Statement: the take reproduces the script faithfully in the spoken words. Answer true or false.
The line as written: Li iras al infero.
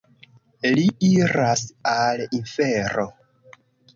true